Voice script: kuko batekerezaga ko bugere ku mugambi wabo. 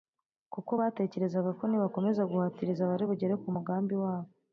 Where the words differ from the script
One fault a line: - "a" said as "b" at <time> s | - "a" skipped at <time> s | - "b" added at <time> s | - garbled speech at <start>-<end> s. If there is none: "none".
- "nibakomeza guhatiriza bari" added at 1.7 s